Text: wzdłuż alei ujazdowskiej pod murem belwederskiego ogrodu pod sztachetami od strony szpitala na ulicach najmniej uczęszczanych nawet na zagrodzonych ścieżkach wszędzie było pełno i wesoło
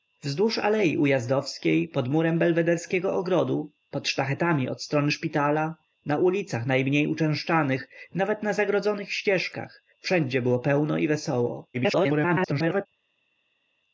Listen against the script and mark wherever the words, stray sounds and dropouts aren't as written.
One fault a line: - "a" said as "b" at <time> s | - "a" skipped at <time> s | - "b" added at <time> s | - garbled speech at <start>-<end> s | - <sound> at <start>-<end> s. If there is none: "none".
- garbled speech at 11.7-12.9 s